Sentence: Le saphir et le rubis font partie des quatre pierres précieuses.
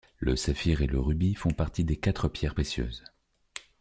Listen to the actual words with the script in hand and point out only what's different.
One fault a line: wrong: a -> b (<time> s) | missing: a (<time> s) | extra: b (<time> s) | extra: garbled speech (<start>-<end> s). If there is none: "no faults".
no faults